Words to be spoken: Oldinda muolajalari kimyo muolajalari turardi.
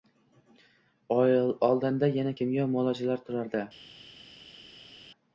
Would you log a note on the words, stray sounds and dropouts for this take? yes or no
yes